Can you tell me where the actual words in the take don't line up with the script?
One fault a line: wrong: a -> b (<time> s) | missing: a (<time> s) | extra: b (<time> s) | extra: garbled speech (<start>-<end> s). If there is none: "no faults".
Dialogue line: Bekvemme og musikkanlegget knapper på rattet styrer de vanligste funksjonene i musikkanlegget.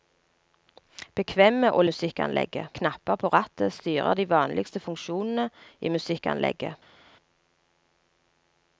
no faults